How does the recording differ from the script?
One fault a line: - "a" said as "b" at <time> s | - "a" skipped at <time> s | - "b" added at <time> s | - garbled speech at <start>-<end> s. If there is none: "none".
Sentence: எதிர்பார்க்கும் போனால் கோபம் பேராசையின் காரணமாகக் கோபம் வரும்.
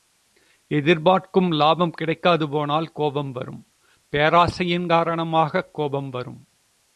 - "லாபம் கிடைக்காது" added at 1.5 s
- "வரும்" added at 3.3 s